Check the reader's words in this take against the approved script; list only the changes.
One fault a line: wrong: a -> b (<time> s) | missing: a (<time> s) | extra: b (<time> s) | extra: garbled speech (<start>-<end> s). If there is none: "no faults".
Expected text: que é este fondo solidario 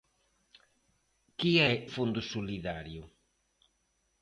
missing: este (1.7 s)